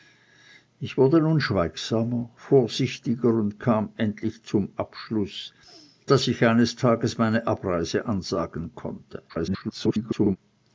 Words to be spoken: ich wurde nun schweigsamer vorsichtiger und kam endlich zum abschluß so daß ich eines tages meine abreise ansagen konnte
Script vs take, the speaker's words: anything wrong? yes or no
yes